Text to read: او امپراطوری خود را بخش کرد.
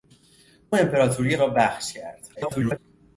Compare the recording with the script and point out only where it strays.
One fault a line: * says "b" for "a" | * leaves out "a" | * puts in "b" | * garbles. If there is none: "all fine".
* leaves out "خود"
* garbles